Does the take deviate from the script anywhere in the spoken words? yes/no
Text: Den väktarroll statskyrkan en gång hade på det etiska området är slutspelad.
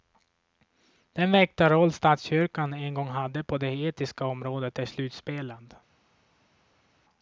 no